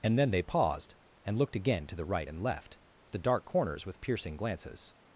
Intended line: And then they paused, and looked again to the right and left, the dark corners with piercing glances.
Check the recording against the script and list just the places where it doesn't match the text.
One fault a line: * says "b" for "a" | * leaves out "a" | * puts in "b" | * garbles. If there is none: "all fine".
all fine